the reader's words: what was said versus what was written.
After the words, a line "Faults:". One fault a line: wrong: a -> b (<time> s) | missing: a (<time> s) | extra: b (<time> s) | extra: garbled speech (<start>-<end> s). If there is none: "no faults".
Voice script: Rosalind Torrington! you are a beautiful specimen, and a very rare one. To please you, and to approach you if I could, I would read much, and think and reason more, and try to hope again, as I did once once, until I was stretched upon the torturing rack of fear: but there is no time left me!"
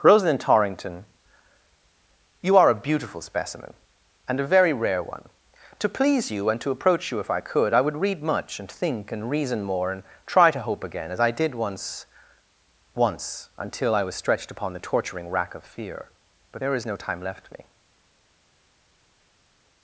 Rosalind Torrington! you are a beautiful specimen, and a very rare one. To please you, and to approach you if I could, I would read much, and think and reason more, and try to hope again, as I did once once, until I was stretched upon the torturing rack of fear: but there is no time left me!"
Faults:
no faults